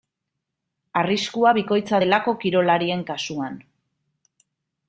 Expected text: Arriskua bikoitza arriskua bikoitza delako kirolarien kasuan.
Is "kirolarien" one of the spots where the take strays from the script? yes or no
no